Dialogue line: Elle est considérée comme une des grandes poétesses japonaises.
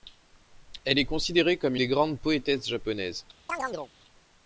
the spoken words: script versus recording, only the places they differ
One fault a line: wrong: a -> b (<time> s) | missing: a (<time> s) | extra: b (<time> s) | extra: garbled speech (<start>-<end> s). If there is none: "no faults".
missing: une (1.8 s)